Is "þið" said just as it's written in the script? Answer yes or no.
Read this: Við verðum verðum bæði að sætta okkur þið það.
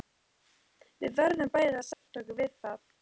no